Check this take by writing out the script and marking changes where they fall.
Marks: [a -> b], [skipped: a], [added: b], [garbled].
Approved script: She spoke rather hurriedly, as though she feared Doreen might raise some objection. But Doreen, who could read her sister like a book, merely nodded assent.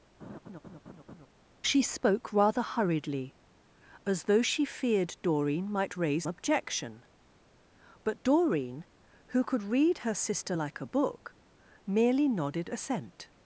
She spoke rather hurriedly, as though she feared Doreen might raise [skipped: some] objection. But Doreen, who could read her sister like a book, merely nodded assent.